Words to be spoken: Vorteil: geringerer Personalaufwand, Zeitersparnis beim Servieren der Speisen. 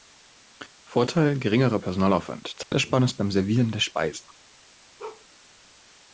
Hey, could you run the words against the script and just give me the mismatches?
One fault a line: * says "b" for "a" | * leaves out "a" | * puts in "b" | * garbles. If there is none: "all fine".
all fine